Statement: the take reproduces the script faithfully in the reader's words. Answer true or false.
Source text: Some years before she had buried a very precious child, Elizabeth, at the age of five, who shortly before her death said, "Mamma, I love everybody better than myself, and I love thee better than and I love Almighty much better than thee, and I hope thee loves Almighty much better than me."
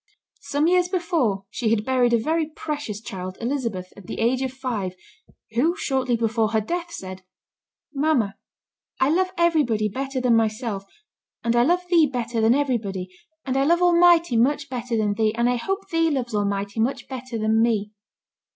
false